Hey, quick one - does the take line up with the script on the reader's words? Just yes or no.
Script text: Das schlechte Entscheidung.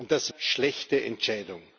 yes